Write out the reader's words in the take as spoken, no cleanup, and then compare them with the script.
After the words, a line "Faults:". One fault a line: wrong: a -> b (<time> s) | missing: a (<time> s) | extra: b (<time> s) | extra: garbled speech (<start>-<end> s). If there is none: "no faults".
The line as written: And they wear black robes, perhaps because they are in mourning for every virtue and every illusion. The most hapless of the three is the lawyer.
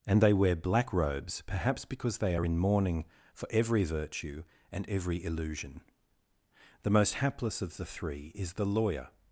And they wear black robes, perhaps because they are in mourning for every virtue and every illusion. The most hapless of the three is the lawyer.
Faults:
no faults